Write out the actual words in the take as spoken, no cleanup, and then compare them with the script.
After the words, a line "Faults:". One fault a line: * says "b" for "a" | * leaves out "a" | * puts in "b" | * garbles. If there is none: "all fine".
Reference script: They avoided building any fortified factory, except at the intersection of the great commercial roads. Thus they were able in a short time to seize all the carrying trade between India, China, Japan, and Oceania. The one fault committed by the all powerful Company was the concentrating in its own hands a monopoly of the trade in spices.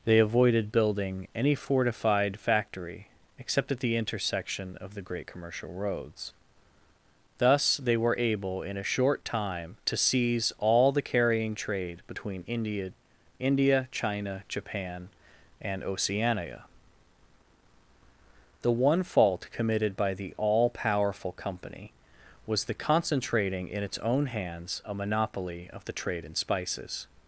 They avoided building any fortified factory, except at the intersection of the great commercial roads. Thus they were able in a short time to seize all the carrying trade between India India, China, Japan, and Oceania. The one fault committed by the all powerful Company was the concentrating in its own hands a monopoly of the trade in spices.
Faults:
* puts in "India"